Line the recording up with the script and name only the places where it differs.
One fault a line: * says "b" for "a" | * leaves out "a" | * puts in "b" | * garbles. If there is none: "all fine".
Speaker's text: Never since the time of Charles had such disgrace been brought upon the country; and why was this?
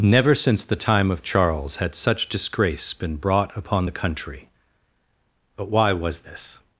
* says "but" for "and"